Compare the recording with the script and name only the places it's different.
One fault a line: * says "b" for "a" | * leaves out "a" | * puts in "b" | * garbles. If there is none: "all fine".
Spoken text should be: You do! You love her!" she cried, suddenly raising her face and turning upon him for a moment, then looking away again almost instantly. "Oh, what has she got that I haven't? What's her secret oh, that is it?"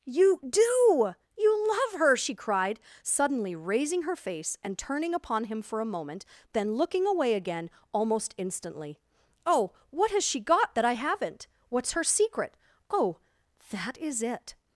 all fine